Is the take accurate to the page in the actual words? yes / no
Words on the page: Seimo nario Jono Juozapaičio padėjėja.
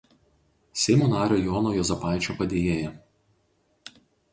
yes